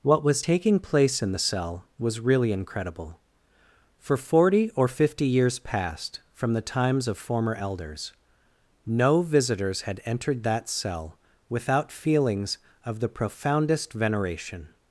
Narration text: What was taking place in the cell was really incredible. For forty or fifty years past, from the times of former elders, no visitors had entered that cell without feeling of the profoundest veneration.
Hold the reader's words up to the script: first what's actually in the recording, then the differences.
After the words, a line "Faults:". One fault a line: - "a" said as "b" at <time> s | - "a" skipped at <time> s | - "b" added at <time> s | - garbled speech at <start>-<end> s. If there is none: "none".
What was taking place in the cell was really incredible. For forty or fifty years past, from the times of former elders, no visitors had entered that cell without feelings of the profoundest veneration.
Faults:
- "feeling" said as "feelings" at 11.9 s